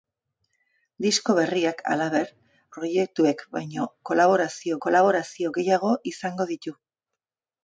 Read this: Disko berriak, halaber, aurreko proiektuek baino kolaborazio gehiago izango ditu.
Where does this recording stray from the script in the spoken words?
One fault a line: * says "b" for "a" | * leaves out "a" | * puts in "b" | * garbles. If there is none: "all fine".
* leaves out "aurreko"
* puts in "kolaborazio"